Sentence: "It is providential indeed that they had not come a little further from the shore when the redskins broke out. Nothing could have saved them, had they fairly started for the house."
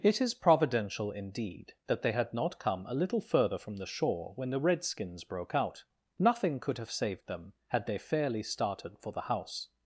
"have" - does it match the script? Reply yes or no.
yes